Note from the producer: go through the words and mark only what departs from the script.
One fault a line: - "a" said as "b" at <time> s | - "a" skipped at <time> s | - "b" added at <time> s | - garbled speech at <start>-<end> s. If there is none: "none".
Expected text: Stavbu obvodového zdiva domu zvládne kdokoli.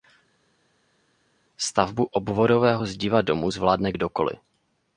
none